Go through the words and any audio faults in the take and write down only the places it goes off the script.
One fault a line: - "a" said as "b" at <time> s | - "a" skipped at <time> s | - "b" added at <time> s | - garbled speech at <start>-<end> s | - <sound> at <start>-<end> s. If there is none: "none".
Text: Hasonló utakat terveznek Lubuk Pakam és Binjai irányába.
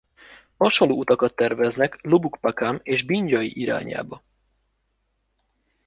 none